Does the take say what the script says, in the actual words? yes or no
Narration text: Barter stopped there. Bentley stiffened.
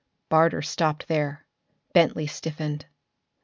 yes